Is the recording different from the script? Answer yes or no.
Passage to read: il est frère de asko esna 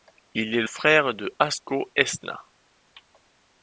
no